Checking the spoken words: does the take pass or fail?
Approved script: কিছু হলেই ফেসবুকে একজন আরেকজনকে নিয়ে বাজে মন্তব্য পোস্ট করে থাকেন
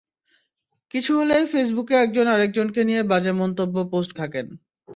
fail